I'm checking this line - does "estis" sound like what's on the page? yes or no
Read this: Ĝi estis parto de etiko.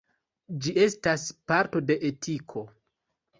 no